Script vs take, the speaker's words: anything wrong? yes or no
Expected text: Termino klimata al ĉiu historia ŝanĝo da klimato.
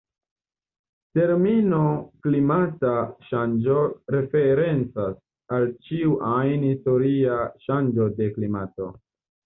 yes